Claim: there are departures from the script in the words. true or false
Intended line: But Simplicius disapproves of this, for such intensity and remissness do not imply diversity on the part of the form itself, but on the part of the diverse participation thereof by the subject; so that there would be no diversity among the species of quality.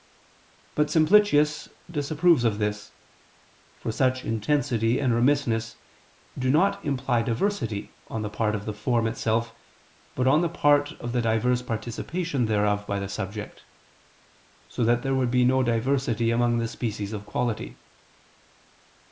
false